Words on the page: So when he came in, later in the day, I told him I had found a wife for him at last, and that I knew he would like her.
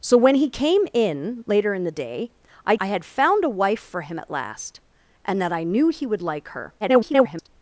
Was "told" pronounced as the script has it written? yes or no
no